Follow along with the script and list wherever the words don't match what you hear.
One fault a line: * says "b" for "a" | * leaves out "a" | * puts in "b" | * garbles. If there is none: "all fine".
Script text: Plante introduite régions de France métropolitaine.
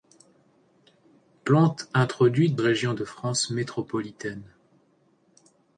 all fine